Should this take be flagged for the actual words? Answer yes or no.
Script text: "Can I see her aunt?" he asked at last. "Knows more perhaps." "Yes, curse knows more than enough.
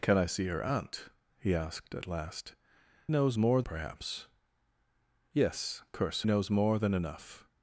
no